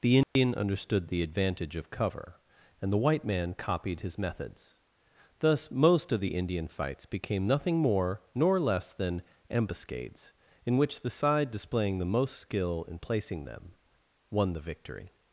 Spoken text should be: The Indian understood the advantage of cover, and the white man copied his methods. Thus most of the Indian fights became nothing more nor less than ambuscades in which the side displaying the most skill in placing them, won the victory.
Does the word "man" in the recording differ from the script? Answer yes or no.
no